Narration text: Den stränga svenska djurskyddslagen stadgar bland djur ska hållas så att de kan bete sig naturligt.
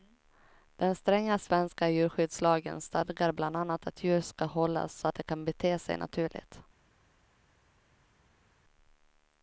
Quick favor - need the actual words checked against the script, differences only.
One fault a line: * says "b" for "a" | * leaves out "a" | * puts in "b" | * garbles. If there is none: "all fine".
* puts in "annat att"